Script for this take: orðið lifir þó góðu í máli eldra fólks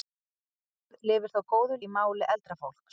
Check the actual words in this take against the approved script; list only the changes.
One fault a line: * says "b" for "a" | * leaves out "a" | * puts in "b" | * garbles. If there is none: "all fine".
all fine